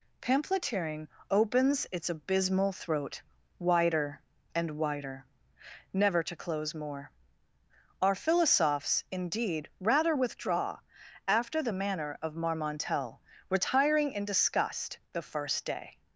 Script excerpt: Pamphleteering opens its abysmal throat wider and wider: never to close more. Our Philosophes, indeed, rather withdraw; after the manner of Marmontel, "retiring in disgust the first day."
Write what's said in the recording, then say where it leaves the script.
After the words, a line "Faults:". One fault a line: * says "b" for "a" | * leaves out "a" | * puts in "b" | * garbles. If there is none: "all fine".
Pamphleteering opens its abysmal throat wider and wider: never to close more. Our Philosophes, indeed, rather withdraw; after the manner of Marmontel, "retiring in disgust the first day."
Faults:
all fine